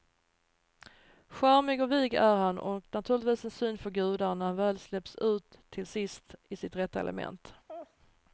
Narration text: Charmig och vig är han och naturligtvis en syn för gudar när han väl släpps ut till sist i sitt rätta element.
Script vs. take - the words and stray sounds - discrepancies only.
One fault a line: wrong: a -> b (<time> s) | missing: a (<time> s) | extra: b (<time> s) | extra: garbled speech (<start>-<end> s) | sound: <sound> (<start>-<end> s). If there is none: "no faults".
sound: laugh (7.7-8.0 s)